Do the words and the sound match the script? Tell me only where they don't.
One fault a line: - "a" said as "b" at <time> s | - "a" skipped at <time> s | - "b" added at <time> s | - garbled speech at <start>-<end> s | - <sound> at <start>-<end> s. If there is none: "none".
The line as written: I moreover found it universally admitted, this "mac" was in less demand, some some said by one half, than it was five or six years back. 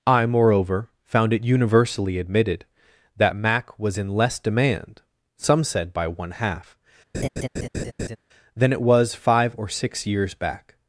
- "this" said as "that" at 3.2 s
- "some" skipped at 5.6 s
- laugh at 7.1-8.2 s